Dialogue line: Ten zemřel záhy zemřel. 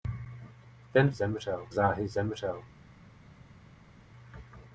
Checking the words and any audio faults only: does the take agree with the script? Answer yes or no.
yes